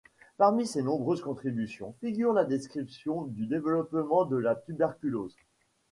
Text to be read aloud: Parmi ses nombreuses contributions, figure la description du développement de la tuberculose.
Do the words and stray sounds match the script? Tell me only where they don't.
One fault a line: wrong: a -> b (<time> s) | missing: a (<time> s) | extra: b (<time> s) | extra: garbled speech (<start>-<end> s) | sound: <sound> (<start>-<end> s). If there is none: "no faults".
no faults